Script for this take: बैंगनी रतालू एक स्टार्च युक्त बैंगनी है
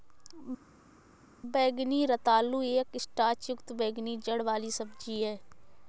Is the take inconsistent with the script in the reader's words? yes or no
yes